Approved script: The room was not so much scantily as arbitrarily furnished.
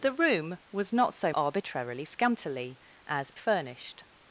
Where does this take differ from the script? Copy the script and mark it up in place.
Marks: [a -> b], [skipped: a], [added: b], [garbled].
The room was not so [much -> arbitrarily] scantily as [skipped: arbitrarily] furnished.